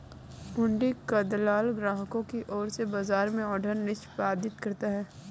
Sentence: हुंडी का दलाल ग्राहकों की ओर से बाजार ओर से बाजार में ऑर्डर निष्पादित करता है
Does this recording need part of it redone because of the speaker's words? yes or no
yes